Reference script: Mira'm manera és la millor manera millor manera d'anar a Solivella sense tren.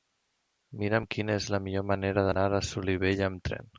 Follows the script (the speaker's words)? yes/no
no